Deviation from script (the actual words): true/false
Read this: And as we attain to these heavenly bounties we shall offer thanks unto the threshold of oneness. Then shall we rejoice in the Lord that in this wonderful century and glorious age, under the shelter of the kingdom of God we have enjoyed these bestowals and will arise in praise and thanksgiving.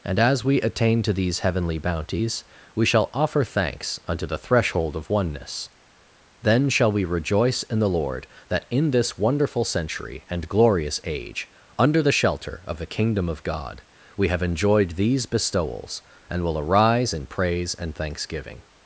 false